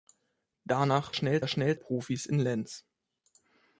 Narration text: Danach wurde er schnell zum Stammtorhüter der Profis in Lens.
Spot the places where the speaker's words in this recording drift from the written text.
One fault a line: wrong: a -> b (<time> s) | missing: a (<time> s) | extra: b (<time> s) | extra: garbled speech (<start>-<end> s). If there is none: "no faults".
wrong: wurde -> schnell (1.1 s)
missing: zum Stammtorhüter der (1.8 s)